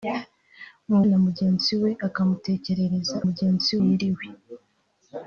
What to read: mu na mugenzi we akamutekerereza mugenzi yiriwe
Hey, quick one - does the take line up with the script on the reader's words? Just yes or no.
yes